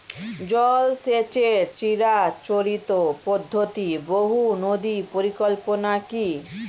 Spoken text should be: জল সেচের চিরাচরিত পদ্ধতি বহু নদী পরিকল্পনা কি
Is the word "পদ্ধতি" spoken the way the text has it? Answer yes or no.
yes